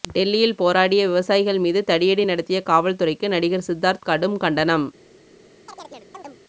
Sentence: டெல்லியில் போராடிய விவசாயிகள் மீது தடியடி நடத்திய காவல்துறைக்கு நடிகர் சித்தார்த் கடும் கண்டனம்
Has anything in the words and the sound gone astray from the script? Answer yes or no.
yes